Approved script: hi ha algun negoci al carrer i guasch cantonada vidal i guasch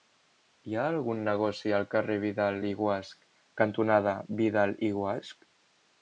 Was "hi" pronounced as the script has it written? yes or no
yes